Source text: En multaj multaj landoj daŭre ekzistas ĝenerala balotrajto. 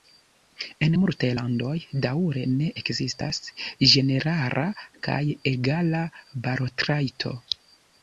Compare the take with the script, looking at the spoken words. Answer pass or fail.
fail